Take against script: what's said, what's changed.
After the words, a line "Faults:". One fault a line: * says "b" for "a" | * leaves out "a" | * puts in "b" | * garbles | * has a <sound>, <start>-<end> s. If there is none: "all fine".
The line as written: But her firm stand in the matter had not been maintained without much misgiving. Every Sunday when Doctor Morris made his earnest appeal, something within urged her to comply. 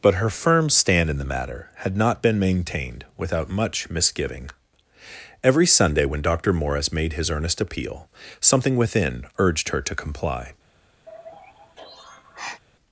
But her firm stand in the matter had not been maintained without much misgiving. Every Sunday when Doctor Morris made his earnest appeal, something within urged her to comply.
Faults:
* has a sigh, 11.1-12.6 s